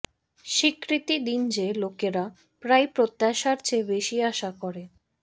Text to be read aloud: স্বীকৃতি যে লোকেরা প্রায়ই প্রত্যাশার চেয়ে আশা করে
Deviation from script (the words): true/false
true